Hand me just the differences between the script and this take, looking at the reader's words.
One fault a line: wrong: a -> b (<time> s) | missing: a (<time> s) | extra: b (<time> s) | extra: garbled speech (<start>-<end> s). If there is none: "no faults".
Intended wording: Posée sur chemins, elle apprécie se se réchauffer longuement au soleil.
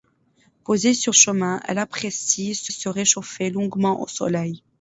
no faults